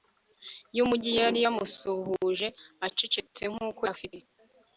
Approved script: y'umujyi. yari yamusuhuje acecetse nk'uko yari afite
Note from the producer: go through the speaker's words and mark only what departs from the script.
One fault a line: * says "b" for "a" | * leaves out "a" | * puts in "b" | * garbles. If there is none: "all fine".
* leaves out "yari"